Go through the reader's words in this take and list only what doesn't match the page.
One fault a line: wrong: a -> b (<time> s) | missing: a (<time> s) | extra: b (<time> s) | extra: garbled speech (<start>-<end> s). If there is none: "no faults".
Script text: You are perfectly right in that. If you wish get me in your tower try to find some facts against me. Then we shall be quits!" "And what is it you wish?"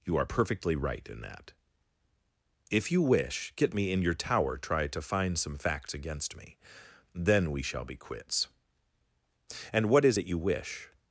no faults